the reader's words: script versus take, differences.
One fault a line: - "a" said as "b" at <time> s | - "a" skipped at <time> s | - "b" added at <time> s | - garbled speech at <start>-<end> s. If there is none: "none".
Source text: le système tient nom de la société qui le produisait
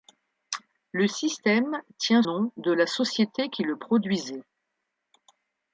none